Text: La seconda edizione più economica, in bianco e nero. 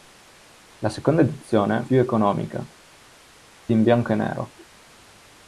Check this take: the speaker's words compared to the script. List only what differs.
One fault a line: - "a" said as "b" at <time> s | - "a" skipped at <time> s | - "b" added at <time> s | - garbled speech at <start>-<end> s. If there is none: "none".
none